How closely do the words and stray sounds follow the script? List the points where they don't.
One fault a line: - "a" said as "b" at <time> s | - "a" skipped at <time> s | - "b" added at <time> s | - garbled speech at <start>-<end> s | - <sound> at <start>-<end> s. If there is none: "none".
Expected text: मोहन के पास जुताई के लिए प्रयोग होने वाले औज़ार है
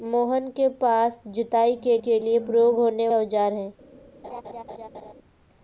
- "के" added at 2.0 s
- "वाले" skipped at 3.1 s
- laugh at 4.2-5.1 s